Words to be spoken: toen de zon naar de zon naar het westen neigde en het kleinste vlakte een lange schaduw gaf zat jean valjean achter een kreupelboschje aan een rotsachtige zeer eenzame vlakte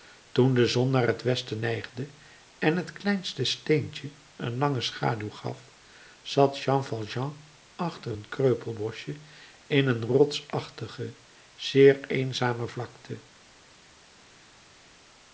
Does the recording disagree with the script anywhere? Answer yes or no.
yes